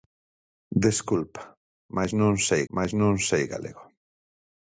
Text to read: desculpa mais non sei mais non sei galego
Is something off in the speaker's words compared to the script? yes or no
no